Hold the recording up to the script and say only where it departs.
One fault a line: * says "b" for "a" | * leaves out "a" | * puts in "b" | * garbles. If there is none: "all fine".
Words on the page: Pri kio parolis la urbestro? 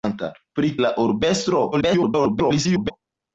* leaves out "kio parolis"
* garbles